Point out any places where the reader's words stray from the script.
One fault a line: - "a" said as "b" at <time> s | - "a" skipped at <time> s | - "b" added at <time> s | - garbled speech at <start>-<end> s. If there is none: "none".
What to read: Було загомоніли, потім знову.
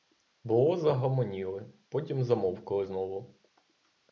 - "замовкли" added at 2.2 s